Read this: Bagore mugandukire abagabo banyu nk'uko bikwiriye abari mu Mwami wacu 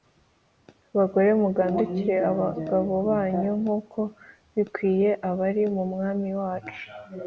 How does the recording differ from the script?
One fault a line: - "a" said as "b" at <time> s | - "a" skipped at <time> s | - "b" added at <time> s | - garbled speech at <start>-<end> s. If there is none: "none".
none